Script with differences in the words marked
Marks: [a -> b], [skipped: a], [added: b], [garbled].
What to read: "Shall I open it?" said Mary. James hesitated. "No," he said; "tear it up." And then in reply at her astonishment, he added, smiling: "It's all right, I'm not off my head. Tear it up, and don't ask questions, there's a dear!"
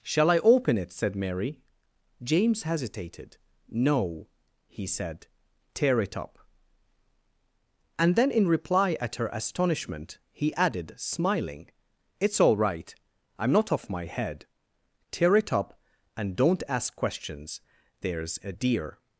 "Shall I open it?" said Mary. James hesitated. "No," he said; "tear it up." And then in reply at her astonishment, he added, smiling: "It's all right, I'm not off my head. Tear it up, and don't ask questions, there's a dear!"